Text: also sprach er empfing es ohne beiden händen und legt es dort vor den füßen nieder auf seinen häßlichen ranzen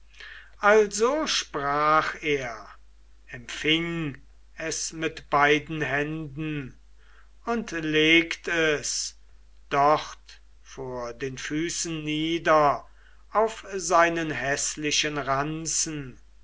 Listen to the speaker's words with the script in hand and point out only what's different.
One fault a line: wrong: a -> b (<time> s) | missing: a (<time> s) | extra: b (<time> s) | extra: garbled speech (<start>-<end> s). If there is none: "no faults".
wrong: ohne -> mit (4.9 s)